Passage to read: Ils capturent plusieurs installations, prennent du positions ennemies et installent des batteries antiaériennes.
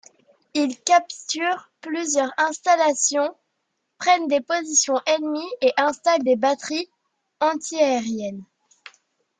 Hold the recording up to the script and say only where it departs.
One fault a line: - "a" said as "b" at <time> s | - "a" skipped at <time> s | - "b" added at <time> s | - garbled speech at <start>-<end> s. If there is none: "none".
- "du" said as "des" at 4.3 s